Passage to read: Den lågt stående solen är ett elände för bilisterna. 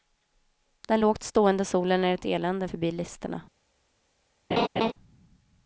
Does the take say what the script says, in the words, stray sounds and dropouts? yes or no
no